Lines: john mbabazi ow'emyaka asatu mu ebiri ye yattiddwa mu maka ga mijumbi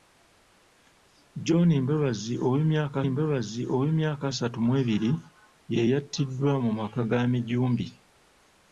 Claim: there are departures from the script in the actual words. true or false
true